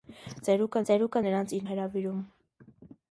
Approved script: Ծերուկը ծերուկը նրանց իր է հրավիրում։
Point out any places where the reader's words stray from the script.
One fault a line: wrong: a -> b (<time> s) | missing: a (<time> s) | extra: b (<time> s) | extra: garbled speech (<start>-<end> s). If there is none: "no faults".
no faults